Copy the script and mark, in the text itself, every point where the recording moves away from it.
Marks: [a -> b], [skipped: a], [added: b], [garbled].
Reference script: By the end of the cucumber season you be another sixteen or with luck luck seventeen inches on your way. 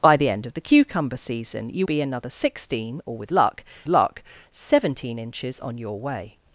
By the end of the cucumber season you be another sixteen or with luck luck seventeen inches on your way.